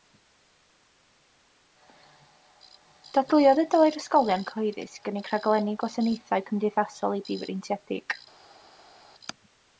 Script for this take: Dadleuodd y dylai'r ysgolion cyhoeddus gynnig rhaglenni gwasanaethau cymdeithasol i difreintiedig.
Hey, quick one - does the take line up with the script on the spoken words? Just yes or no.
yes